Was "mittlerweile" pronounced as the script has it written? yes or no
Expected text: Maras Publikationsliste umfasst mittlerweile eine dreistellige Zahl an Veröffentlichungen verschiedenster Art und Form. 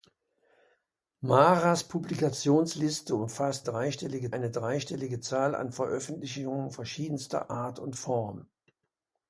no